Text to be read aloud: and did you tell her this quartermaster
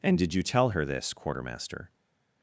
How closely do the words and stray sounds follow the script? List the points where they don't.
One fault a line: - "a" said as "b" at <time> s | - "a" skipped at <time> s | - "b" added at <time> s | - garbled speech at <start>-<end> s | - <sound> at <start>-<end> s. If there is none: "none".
none